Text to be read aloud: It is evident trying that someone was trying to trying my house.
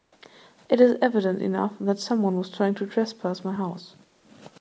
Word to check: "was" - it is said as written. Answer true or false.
true